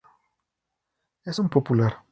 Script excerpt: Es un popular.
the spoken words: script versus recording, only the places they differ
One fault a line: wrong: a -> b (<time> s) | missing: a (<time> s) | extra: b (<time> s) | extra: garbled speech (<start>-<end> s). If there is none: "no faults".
no faults